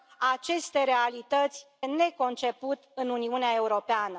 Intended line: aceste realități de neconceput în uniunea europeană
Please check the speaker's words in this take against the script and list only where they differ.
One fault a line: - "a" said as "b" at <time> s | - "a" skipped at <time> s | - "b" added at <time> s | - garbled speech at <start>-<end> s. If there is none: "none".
- "de" skipped at 1.7 s